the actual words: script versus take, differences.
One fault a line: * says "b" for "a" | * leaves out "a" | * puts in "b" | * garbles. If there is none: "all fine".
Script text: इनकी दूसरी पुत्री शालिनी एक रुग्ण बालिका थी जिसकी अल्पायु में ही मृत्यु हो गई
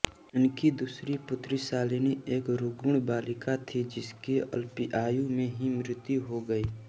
all fine